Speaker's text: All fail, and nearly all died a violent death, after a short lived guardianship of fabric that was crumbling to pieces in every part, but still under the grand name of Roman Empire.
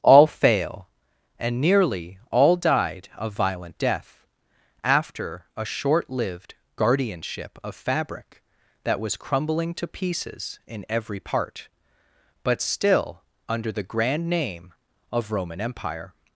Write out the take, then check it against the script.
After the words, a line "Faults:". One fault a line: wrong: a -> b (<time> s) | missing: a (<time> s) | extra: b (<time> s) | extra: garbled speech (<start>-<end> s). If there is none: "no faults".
All fail, and nearly all died a violent death, after a short lived guardianship of fabric that was crumbling to pieces in every part, but still under the grand name of Roman Empire.
Faults:
no faults